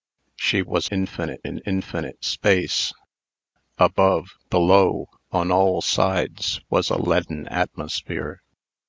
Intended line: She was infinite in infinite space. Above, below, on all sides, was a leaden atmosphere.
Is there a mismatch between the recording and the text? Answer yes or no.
no